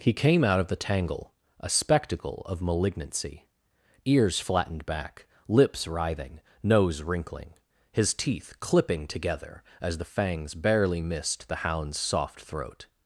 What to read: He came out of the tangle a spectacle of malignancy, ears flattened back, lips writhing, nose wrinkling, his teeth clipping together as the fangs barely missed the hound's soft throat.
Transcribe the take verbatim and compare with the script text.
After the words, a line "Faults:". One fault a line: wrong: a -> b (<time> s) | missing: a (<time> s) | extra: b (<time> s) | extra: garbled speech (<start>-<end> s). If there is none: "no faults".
He came out of the tangle a spectacle of malignancy, ears flattened back, lips writhing, nose wrinkling, his teeth clipping together as the fangs barely missed the hound's soft throat.
Faults:
no faults